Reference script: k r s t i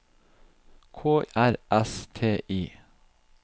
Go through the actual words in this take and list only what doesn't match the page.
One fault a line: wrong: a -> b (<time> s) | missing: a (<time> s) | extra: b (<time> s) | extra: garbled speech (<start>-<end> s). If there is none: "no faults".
no faults